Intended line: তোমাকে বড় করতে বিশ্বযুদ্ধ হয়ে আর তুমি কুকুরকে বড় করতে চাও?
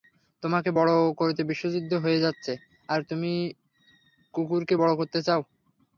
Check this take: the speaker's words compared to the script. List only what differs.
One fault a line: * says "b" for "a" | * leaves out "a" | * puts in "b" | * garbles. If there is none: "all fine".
* puts in "যাচ্ছে"